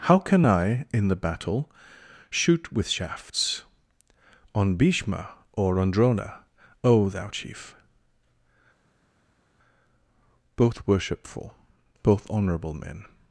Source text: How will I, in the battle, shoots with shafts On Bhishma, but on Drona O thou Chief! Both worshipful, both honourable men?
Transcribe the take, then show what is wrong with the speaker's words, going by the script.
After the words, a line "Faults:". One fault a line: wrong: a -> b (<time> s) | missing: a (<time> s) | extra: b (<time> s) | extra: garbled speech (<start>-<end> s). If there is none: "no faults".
How can I, in the battle, shoot with shafts On Bhishma, or on Drona O thou Chief! Both worshipful, both honourable men?
Faults:
wrong: will -> can (0.2 s)
wrong: shoots -> shoot (2.3 s)
wrong: but -> or (5.5 s)